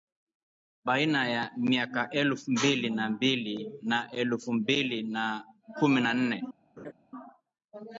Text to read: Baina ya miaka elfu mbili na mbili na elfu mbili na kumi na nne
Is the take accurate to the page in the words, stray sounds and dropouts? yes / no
no